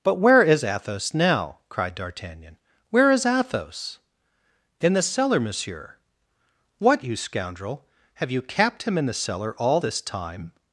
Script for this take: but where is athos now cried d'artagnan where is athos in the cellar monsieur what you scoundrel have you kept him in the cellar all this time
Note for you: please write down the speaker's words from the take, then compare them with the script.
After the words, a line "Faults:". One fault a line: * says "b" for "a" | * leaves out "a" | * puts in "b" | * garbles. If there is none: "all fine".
but where is athos now cried d'artagnan where is athos in the cellar monsieur what you scoundrel have you capped him in the cellar all this time
Faults:
* says "capped" for "kept"